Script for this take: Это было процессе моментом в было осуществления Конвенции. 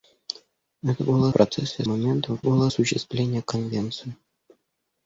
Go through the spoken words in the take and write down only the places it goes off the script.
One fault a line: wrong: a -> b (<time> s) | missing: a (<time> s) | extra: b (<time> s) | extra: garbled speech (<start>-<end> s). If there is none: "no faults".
no faults